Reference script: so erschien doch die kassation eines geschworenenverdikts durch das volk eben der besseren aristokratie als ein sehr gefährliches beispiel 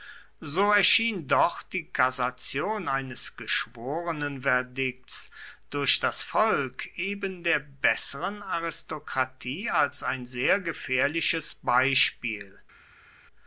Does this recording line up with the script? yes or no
yes